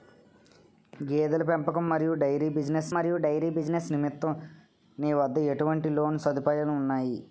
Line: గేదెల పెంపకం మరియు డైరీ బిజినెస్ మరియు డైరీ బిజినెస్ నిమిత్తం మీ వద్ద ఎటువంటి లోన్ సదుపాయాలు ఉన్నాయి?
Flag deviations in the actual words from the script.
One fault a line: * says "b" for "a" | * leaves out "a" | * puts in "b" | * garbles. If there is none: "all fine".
all fine